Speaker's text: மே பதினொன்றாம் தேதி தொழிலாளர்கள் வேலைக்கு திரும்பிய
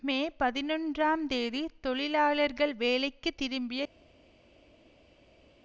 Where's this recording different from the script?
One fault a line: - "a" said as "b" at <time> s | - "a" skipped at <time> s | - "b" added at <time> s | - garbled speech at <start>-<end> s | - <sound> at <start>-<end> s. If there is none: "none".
none